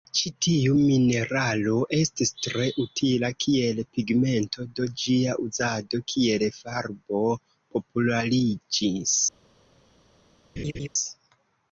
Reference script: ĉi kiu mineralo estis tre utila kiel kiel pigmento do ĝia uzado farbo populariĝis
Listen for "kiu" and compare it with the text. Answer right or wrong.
wrong